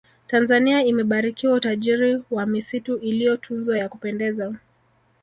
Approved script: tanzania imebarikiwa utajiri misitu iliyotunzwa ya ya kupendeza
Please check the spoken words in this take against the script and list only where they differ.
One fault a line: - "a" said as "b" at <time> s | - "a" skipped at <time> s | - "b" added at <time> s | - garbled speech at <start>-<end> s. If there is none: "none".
- "wa" added at 2.3 s
- "ya" skipped at 3.9 s